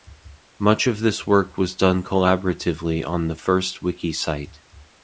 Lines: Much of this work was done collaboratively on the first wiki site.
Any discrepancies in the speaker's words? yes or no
no